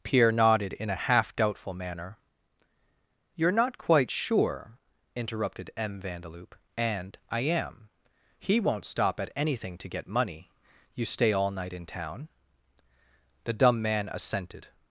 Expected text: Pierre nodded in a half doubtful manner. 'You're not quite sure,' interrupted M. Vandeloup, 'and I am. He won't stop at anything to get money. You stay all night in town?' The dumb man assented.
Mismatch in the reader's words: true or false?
false